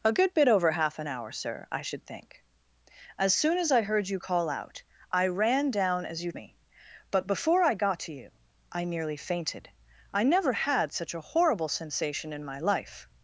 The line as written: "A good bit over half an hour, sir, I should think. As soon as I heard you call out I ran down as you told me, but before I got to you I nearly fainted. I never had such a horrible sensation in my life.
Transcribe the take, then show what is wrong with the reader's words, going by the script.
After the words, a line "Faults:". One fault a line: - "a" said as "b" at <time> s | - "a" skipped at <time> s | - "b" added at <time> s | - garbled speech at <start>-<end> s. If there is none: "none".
"A good bit over half an hour, sir, I should think. As soon as I heard you call out I ran down as you me, but before I got to you I nearly fainted. I never had such a horrible sensation in my life.
Faults:
- "told" skipped at 6.3 s